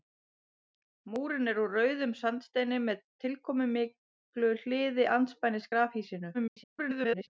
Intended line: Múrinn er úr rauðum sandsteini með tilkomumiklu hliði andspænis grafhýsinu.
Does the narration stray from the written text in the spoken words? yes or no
yes